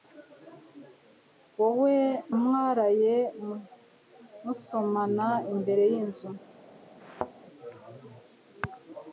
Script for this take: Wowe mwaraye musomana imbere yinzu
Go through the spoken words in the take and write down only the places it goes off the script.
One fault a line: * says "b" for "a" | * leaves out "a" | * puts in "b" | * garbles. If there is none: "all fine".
all fine